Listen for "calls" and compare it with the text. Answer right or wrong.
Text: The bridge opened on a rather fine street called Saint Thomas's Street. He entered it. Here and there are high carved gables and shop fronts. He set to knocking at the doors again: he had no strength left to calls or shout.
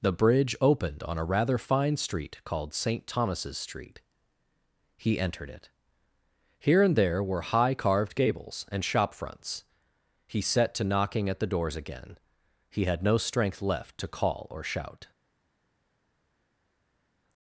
wrong